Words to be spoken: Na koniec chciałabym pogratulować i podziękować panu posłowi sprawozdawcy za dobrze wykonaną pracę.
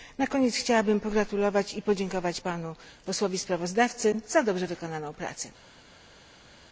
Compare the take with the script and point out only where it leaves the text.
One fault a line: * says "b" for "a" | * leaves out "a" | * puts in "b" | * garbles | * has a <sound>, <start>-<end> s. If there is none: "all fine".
all fine